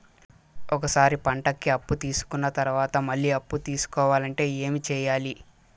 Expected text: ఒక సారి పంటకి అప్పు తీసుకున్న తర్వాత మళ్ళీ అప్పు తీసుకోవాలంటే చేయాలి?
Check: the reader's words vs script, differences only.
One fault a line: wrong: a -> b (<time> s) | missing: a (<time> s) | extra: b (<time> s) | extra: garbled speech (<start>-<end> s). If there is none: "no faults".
extra: ఏమి (4.6 s)